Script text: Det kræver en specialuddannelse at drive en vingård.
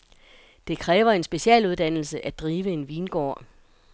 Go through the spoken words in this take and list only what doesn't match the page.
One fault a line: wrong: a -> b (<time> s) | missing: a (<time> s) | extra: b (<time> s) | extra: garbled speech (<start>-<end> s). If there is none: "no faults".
no faults